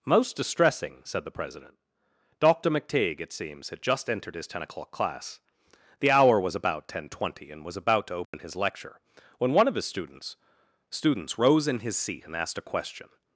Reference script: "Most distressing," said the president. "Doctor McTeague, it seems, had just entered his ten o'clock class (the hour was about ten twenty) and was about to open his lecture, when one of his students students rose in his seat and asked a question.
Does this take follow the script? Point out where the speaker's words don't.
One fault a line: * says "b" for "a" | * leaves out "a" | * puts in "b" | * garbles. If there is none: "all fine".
all fine